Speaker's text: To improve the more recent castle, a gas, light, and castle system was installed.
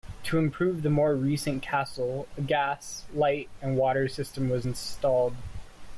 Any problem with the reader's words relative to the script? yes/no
yes